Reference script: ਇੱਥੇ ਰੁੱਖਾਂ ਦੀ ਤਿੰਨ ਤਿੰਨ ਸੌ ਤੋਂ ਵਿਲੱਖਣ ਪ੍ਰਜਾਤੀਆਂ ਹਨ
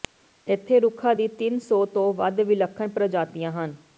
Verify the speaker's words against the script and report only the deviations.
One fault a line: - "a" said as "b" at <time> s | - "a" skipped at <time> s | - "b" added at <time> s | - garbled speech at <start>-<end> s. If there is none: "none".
- "ਤਿੰਨ" skipped at 1.6 s
- "ਵੱਧ" added at 2.1 s